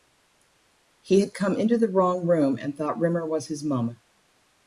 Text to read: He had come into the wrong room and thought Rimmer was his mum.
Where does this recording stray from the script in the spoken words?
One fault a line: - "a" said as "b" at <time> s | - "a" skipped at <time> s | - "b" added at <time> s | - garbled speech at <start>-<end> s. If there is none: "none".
none